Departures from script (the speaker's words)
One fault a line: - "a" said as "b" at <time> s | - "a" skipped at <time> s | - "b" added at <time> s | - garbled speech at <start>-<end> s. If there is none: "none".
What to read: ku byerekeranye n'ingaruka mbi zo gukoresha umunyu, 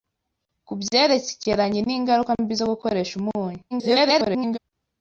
- garbled speech at 3.7-4.6 s